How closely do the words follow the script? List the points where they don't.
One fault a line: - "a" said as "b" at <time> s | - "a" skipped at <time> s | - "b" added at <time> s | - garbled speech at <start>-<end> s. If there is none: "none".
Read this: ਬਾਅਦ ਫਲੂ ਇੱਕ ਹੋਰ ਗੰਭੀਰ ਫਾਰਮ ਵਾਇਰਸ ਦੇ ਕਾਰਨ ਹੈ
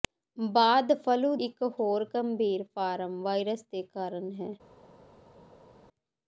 none